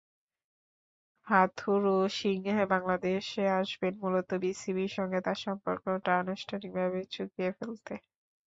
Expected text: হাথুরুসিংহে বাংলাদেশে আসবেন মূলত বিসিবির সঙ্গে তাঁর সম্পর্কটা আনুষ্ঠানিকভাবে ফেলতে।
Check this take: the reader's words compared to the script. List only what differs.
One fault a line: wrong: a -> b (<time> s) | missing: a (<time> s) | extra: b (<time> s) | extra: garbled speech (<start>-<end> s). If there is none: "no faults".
extra: চুকিয়ে (7.1 s)